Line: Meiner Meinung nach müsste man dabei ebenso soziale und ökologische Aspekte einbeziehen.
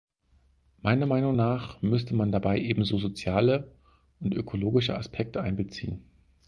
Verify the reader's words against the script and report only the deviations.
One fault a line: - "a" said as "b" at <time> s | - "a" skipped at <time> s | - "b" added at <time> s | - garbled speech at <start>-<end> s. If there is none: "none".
none